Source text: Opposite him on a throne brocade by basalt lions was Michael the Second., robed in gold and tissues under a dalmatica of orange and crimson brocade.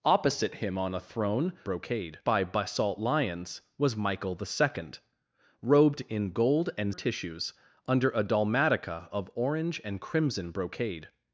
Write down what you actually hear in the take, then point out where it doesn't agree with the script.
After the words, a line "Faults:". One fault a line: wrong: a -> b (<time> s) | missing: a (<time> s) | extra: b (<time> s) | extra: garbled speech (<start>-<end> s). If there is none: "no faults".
Opposite him on a throne brocade by basalt lions was Michael the Second., robed in gold and tissues under a dalmatica of orange and crimson brocade.
Faults:
no faults